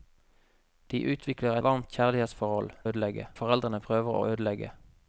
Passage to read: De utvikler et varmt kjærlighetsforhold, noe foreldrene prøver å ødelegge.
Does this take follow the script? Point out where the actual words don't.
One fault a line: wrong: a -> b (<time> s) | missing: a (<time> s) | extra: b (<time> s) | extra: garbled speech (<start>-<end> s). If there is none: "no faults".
missing: et (1.6 s)
wrong: noe -> ødelegge (2.9 s)